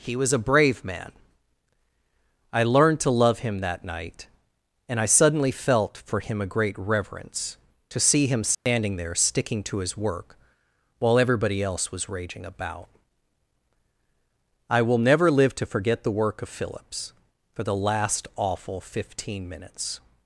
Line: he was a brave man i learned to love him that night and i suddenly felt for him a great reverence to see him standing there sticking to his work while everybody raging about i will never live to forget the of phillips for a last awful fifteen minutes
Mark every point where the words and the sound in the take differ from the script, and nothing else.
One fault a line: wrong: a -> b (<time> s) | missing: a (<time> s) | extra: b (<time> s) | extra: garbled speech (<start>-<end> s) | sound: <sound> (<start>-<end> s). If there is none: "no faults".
sound: dropout (8.5-8.7 s)
extra: else was (11.6 s)
extra: work (16.2 s)
wrong: a -> the (17.6 s)